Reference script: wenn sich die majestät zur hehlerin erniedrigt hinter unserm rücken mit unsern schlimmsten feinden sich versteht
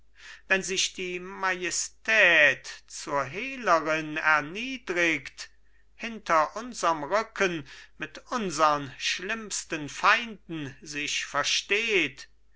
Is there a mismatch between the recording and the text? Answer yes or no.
no